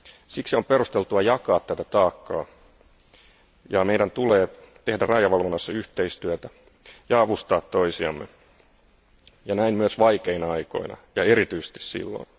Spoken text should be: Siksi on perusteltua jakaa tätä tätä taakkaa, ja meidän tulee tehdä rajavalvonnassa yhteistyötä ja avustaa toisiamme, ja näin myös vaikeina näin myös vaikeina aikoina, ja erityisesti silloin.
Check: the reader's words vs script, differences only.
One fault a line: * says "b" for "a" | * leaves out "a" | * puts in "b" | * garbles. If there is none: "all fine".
* leaves out "tätä"
* leaves out "näin myös vaikeina"